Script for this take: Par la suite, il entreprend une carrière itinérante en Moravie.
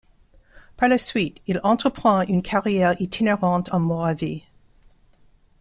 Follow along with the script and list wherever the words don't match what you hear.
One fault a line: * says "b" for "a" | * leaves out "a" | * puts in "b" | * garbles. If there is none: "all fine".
all fine